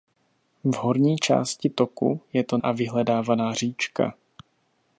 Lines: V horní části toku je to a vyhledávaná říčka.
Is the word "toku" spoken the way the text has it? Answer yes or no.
yes